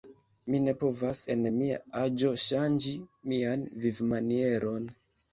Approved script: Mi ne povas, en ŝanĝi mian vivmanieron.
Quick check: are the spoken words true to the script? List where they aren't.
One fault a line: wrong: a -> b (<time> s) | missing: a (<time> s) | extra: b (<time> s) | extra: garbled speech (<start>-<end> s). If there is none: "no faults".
extra: mia aĝo (1.5 s)